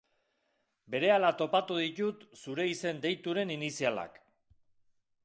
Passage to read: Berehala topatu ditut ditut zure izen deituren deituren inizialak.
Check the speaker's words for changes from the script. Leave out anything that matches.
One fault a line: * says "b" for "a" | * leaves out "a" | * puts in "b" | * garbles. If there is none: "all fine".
* leaves out "ditut"
* leaves out "deituren"